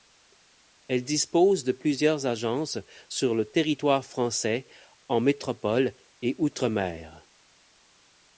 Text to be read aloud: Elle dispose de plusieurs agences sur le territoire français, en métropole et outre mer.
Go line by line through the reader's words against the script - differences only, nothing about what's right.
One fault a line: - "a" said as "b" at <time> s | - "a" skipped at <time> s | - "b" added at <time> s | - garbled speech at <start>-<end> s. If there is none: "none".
none